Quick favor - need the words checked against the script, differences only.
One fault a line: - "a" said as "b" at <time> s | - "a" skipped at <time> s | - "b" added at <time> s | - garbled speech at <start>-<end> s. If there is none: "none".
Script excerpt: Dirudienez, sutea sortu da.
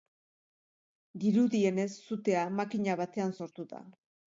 - "makina batean" added at 2.6 s